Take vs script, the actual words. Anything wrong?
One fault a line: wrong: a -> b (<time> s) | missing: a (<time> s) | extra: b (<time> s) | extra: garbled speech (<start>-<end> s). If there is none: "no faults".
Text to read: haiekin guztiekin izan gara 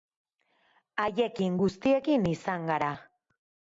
no faults